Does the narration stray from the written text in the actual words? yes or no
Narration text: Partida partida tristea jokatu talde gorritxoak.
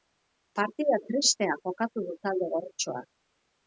yes